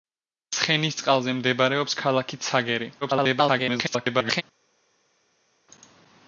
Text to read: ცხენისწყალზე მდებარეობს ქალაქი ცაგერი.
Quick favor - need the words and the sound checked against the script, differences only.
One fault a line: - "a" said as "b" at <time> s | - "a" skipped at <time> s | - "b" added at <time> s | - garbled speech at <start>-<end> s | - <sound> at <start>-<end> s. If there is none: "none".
- garbled speech at 3.0-4.4 s